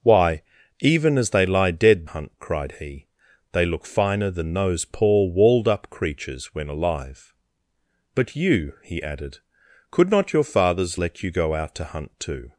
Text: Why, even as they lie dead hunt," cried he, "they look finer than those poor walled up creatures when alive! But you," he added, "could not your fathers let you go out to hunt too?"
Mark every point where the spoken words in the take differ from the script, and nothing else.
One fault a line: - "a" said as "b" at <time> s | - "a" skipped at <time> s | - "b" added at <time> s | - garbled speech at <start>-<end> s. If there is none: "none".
none